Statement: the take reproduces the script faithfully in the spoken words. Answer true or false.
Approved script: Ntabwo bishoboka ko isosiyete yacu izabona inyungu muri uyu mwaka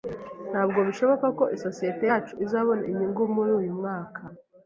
true